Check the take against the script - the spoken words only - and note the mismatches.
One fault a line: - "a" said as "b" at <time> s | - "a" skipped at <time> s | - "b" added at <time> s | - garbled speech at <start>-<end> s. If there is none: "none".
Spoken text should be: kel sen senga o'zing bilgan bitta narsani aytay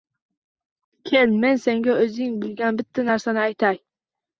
- "sen" said as "men" at 1.4 s